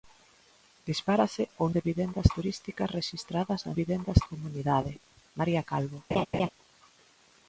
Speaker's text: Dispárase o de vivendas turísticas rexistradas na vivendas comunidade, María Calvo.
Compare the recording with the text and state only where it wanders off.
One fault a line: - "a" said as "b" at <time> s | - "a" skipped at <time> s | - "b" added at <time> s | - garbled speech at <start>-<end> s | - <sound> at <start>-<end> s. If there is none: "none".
- laugh at 6.1-6.5 s